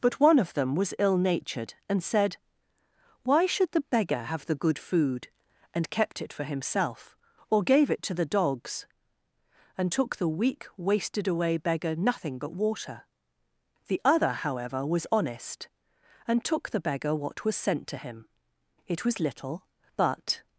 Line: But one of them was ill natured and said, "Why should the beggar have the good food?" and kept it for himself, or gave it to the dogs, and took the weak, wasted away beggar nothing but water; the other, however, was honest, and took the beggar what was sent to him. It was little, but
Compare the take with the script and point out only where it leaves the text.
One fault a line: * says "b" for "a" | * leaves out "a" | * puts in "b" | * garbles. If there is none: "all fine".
all fine